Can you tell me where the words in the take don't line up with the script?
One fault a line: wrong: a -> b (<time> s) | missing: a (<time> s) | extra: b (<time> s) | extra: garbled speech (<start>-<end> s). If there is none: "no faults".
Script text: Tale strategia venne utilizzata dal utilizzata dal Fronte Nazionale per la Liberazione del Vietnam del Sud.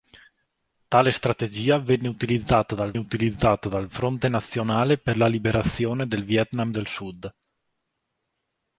no faults